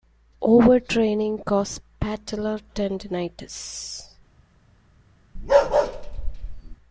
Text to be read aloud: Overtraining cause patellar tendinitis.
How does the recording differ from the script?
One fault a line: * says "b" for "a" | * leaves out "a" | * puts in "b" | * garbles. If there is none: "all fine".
all fine